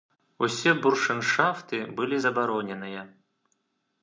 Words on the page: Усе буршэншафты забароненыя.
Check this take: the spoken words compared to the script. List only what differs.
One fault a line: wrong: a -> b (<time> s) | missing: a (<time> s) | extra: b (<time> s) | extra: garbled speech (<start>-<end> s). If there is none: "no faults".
extra: былі (2.0 s)